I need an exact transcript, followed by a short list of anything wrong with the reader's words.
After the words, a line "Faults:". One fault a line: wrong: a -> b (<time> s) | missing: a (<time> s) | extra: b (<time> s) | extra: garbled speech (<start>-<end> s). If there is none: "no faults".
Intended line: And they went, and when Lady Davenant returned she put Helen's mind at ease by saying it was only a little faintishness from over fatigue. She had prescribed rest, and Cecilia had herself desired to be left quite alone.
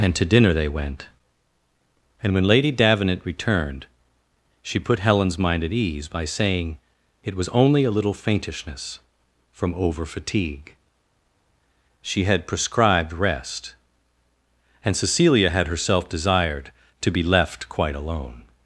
And to dinner they went, and when Lady Davenant returned she put Helen's mind at ease by saying it was only a little faintishness from over fatigue. She had prescribed rest, and Cecilia had herself desired to be left quite alone.
Faults:
extra: to dinner (0.1 s)